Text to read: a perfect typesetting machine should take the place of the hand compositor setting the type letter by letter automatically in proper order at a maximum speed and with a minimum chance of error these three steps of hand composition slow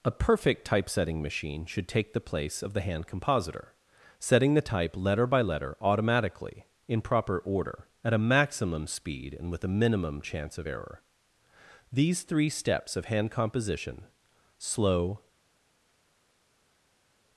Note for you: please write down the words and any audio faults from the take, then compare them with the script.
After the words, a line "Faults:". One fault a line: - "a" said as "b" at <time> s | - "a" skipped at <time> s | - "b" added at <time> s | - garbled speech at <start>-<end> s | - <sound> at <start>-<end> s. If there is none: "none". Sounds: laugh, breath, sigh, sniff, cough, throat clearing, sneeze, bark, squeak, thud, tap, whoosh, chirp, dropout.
a perfect typesetting machine should take the place of the hand compositor setting the type letter by letter automatically in proper order at a maximum speed and with a minimum chance of error these three steps of hand composition slow
Faults:
none